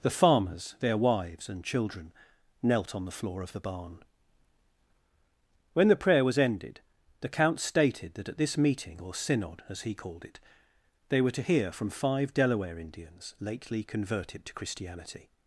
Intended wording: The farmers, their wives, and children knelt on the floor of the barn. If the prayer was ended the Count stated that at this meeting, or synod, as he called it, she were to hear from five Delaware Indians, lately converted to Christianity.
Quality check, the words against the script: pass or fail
fail